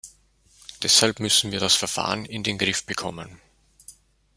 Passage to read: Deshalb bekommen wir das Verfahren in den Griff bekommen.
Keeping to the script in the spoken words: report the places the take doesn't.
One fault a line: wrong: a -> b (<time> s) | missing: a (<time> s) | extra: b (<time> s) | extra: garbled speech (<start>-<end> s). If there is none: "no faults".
wrong: bekommen -> müssen (1.2 s)